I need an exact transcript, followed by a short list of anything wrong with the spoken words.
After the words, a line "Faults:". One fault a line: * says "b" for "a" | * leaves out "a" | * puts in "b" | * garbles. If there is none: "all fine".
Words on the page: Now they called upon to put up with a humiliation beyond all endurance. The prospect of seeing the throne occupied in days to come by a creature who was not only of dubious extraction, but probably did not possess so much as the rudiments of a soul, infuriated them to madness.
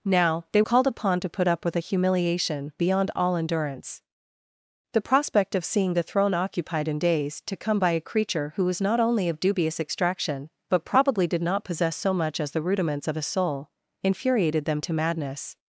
Now they called upon to put up with a humiliation beyond all endurance. The prospect of seeing the throne occupied in days to come by a creature who was not only of dubious extraction, but probably did not possess so much as the rudiments of a soul, infuriated them to madness.
Faults:
all fine